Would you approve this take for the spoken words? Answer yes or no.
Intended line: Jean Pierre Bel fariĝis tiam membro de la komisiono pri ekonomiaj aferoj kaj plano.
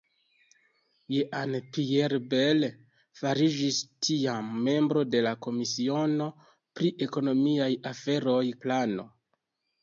no